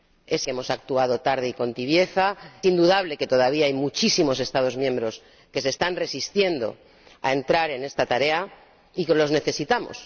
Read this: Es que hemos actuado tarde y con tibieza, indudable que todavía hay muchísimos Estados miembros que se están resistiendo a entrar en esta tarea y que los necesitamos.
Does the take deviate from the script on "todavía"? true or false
false